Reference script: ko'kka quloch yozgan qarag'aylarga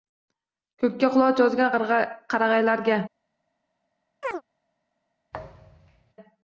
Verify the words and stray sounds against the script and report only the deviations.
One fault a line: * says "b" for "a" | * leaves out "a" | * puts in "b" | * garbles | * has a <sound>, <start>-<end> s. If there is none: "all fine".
* has a chirp, 4.2-4.4 s
* has a thud, 5.3-6.1 s